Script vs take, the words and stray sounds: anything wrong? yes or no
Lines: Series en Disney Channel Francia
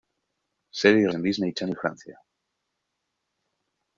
no